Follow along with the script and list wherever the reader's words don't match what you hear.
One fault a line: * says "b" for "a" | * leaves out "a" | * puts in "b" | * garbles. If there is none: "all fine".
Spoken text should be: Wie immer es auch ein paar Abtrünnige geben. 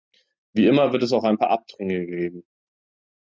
* puts in "wird"